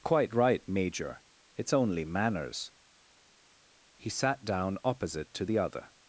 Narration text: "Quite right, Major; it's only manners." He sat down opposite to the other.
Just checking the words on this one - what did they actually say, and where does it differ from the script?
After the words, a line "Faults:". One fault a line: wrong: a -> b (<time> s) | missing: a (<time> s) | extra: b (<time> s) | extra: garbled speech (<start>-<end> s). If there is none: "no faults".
"Quite right, Major; it's only manners." He sat down opposite to the other.
Faults:
no faults